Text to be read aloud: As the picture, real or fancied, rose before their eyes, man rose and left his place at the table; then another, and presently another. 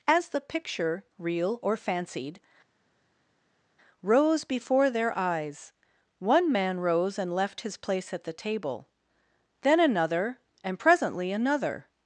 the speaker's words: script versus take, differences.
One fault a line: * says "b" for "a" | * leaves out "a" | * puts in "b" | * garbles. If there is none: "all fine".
* puts in "one"